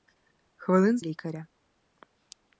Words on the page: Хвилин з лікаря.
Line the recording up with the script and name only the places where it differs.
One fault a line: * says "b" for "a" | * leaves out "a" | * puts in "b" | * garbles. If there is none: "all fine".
all fine